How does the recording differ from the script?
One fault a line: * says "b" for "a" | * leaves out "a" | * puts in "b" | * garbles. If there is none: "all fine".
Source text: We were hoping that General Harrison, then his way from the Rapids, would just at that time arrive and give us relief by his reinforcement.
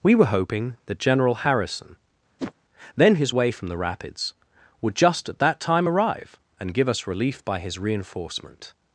all fine